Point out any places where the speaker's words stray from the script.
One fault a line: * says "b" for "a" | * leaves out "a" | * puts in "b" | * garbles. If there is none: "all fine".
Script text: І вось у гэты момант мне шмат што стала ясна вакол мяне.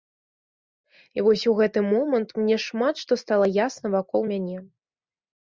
all fine